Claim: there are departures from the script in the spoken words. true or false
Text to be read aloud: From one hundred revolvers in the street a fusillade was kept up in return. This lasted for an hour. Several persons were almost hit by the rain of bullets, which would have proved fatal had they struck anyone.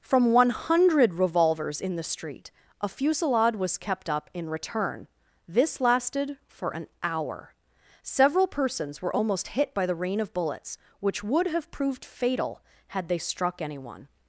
false